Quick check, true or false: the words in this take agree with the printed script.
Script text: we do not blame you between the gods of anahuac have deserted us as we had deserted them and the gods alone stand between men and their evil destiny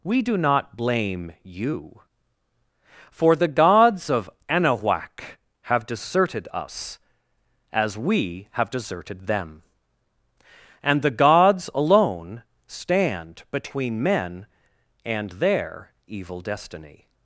false